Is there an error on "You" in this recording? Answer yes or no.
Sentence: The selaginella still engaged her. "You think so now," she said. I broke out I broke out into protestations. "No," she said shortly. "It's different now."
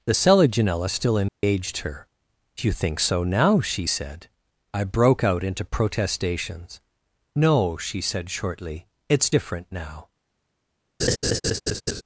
no